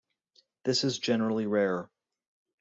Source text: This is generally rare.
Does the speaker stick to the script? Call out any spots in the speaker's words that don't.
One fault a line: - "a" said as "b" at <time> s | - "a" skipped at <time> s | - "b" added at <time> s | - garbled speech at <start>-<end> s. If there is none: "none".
none